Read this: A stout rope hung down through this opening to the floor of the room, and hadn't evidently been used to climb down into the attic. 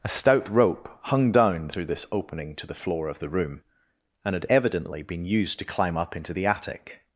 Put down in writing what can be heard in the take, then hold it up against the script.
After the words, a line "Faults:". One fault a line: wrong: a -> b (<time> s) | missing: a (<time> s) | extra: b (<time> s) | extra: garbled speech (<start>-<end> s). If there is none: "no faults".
A stout rope hung down through this opening to the floor of the room, and had evidently been used to climb up into the attic.
Faults:
wrong: hadn't -> had (4.3 s)
wrong: down -> up (6.0 s)